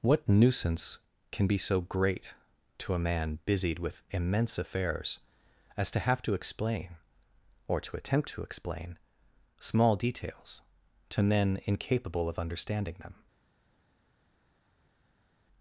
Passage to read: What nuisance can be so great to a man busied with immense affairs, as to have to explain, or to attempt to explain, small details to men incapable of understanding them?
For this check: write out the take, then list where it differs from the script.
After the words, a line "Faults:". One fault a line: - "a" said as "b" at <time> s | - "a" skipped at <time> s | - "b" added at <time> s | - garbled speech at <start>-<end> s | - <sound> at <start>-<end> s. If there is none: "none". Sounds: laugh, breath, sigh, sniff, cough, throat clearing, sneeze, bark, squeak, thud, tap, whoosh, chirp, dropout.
What nuisance can be so great to a man busied with immense affairs, as to have to explain, or to attempt to explain, small details to men incapable of understanding them?
Faults:
none